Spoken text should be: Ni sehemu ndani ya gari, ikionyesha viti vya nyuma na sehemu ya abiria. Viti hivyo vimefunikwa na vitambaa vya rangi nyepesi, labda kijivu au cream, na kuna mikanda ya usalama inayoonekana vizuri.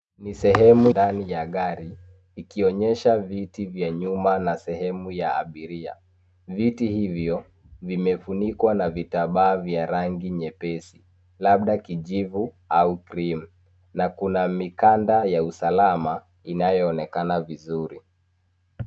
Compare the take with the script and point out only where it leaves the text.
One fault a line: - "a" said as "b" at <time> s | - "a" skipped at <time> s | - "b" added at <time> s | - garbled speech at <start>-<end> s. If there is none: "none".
none